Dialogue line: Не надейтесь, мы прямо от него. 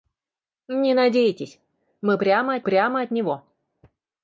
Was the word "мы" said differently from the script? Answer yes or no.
no